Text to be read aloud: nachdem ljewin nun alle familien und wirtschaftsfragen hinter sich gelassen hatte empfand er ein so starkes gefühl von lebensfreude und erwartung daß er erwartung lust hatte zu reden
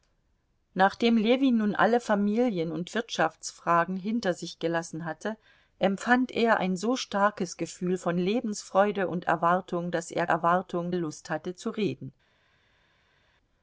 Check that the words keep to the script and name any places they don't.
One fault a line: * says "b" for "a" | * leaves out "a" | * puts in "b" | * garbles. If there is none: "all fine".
all fine